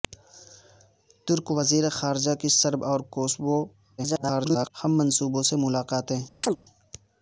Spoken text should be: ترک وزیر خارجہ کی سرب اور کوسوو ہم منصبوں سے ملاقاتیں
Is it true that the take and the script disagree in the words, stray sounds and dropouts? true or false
true